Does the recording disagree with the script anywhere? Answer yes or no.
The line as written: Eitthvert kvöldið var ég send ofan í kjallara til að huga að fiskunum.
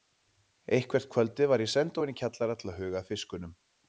no